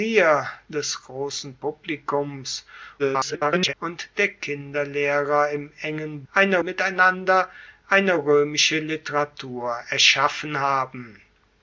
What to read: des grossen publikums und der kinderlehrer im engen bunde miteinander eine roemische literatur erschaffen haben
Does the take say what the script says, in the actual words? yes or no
no